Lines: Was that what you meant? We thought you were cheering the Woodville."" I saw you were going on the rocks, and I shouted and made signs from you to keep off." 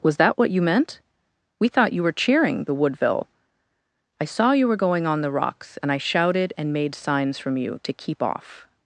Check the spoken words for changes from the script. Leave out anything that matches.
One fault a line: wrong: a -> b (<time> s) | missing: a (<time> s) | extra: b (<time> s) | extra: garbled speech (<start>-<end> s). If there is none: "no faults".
no faults